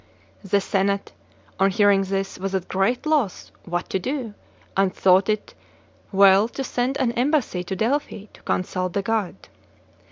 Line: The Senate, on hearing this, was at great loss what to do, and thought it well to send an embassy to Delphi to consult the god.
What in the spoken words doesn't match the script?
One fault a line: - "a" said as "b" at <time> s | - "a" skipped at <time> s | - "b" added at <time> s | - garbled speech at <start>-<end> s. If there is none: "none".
none